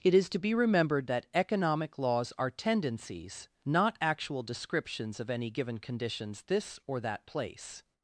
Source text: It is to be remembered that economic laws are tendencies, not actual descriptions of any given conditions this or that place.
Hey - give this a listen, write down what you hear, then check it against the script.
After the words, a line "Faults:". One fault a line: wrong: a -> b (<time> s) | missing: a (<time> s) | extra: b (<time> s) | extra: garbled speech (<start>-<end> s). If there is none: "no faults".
It is to be remembered that economic laws are tendencies, not actual descriptions of any given conditions this or that place.
Faults:
no faults